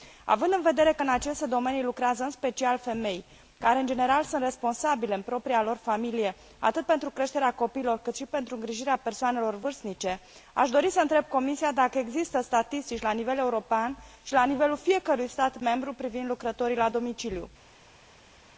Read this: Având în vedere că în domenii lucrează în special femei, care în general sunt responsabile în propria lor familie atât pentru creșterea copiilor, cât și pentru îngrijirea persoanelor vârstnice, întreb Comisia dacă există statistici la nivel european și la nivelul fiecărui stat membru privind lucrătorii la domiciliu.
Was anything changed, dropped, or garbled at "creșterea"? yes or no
no